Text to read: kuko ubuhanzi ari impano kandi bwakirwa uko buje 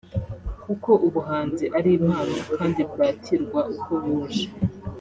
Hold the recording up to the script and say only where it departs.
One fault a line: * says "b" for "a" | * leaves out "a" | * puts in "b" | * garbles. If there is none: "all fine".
all fine